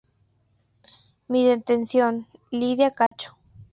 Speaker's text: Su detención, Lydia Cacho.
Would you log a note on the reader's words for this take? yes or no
yes